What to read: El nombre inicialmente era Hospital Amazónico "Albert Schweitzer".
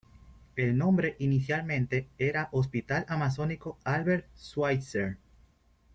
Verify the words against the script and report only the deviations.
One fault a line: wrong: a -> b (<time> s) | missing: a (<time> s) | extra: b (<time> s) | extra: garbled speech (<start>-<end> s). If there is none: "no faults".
no faults